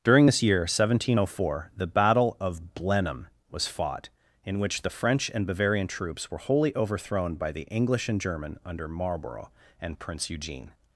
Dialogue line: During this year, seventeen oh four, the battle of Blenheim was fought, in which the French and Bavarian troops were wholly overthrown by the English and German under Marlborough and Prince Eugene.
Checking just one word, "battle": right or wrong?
right